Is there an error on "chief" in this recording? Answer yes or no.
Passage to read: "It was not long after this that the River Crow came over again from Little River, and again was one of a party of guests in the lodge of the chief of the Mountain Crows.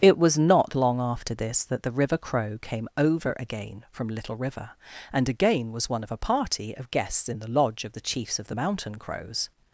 yes